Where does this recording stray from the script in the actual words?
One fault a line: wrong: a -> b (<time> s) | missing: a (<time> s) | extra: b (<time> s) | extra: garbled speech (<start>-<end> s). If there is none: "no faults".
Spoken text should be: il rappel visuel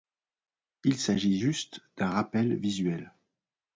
extra: s'agit juste d'un (1.0 s)